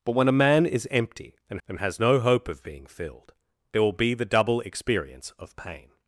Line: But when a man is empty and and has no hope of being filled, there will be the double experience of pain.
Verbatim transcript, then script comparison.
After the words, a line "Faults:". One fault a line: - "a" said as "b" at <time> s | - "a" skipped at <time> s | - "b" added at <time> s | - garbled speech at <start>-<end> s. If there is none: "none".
But when a man is empty and and has no hope of being filled, there will be the double experience of pain.
Faults:
none